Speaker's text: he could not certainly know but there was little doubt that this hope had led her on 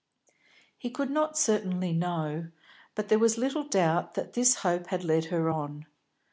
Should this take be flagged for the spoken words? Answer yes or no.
no